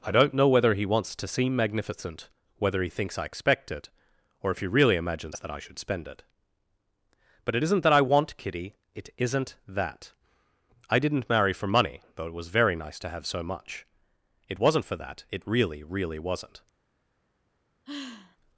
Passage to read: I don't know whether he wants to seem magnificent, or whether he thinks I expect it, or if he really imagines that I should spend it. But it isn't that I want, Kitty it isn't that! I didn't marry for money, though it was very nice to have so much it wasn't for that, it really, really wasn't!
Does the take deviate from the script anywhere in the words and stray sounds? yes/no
yes